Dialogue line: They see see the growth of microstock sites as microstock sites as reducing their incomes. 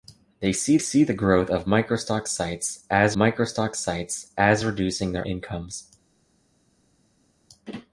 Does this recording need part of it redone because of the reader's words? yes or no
no